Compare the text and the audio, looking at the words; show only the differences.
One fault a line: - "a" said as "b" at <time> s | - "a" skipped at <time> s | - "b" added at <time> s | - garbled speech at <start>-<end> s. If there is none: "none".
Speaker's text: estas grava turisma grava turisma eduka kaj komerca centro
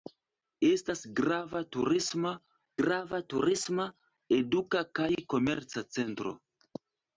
none